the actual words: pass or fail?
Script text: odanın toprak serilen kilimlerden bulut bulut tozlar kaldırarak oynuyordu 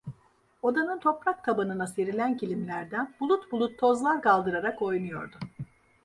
fail